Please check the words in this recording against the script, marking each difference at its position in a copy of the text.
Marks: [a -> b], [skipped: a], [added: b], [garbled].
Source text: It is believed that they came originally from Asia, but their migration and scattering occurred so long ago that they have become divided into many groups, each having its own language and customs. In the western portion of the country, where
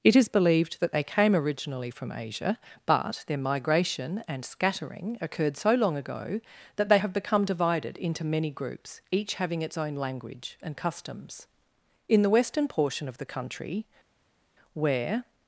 It is believed that they came originally from Asia, but their migration and scattering occurred so long ago that they have become divided into many groups, each having its own language and customs. In the western portion of the country, where